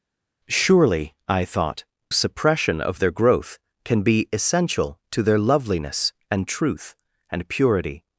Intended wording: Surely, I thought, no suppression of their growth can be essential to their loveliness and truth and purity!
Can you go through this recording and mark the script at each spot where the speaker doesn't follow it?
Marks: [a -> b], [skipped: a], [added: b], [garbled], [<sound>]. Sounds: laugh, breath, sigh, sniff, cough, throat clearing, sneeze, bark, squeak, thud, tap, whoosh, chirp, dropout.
Surely, I thought, [skipped: no] suppression of their growth can be essential to their loveliness and truth and purity!